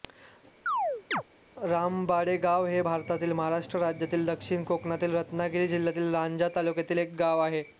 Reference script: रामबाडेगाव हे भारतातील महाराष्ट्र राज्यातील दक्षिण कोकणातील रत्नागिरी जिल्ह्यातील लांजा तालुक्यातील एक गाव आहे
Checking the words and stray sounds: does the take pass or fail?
fail